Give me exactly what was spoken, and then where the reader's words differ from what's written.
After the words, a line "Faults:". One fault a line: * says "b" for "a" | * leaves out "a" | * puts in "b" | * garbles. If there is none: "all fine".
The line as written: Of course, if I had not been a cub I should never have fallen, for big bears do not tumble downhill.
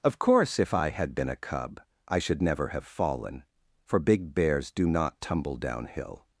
Of course, if I had been a cub I should never have fallen, for big bears do not tumble downhill.
Faults:
* leaves out "not"